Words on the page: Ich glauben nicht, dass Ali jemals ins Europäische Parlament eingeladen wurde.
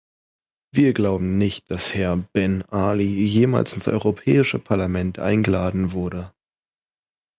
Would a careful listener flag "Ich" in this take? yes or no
yes